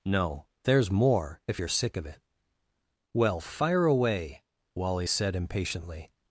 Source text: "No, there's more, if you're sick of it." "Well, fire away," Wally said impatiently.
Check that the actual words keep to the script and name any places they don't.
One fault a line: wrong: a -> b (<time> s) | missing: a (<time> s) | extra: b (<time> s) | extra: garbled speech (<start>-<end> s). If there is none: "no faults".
no faults